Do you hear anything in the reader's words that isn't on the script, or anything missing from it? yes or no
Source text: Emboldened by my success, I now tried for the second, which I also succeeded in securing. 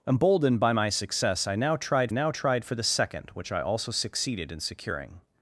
yes